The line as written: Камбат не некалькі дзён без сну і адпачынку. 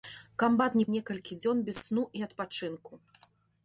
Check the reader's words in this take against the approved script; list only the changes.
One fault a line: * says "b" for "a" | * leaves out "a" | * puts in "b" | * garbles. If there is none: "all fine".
all fine